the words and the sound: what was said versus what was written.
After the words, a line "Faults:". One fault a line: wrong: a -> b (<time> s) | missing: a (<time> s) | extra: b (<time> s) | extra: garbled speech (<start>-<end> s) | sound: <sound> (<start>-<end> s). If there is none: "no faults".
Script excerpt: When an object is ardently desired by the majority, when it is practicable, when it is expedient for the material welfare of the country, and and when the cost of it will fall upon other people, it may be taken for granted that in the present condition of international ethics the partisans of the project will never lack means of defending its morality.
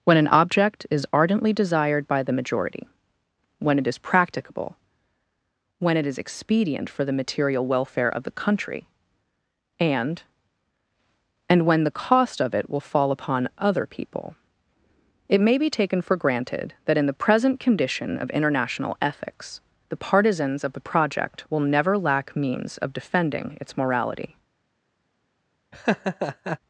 When an object is ardently desired by the majority, when it is practicable, when it is expedient for the material welfare of the country, and and when the cost of it will fall upon other people, it may be taken for granted that in the present condition of international ethics the partisans of the project will never lack means of defending its morality.
Faults:
sound: laugh (25.7-26.6 s)